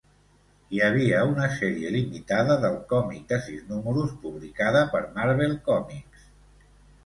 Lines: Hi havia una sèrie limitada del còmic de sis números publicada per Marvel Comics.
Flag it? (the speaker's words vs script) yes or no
no